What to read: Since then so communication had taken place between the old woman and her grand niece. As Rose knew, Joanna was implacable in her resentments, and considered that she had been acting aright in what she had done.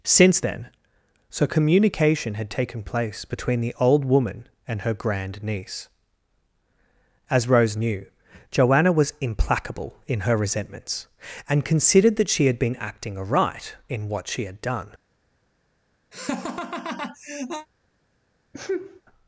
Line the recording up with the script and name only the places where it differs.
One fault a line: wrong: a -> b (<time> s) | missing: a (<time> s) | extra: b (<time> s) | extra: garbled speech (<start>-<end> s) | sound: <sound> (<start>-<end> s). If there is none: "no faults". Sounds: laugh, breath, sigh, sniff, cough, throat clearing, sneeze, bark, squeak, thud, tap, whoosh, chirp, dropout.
sound: laugh (16.1-17.7 s)
sound: sneeze (18.5-19.0 s)